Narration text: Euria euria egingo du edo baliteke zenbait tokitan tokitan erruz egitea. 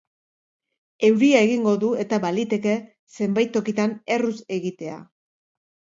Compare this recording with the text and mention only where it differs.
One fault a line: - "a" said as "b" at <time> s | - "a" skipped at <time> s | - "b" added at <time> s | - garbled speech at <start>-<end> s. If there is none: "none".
- "euria" skipped at 1.4 s
- "edo" said as "eta" at 2.0 s
- "tokitan" skipped at 3.9 s